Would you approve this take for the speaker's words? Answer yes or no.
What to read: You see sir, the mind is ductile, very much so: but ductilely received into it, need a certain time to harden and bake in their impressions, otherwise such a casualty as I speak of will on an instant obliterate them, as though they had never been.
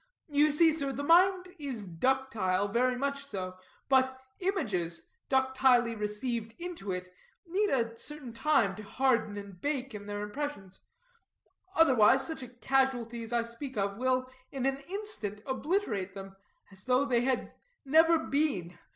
no